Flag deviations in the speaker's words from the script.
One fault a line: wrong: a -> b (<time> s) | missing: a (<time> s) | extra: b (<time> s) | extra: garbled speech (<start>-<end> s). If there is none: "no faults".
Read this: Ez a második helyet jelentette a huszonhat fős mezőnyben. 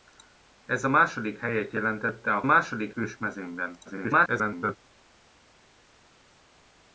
wrong: huszonhat -> második (2.4 s)
extra: garbled speech (3.9-4.8 s)